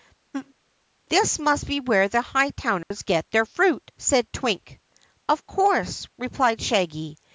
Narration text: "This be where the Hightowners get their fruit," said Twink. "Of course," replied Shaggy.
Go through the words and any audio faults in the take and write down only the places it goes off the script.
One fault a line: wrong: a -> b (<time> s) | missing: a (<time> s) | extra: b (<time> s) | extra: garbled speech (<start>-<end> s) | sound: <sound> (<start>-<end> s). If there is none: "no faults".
sound: laugh (0.3-0.5 s)
extra: must (1.4 s)
sound: dropout (2.8-2.9 s)